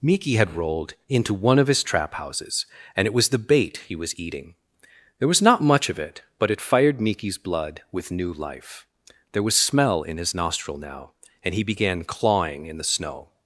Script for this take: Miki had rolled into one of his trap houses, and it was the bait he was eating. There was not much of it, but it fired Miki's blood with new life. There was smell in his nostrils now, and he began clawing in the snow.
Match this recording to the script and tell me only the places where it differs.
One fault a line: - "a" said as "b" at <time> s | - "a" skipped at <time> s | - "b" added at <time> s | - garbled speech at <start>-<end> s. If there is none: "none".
- "nostrils" said as "nostril" at 10.3 s